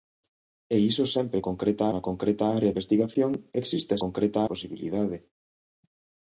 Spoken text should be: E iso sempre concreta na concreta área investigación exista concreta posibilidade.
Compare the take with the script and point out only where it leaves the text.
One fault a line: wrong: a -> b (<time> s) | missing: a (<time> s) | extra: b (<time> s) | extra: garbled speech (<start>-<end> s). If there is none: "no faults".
no faults